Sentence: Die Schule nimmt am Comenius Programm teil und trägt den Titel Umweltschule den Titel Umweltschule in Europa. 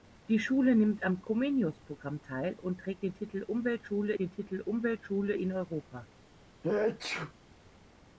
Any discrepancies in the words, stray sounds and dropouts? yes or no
yes